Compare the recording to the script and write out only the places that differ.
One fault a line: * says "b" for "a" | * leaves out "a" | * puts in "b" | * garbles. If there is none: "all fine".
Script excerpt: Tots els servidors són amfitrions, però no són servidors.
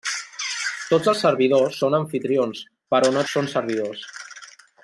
all fine